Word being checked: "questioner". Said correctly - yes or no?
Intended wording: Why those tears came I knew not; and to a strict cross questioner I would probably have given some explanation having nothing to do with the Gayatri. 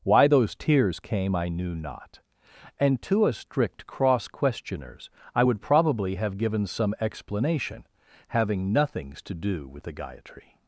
no